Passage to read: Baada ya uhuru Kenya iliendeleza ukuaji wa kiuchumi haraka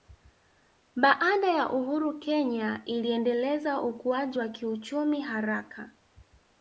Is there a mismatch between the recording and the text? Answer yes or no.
no